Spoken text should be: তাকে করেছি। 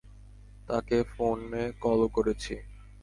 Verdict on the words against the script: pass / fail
fail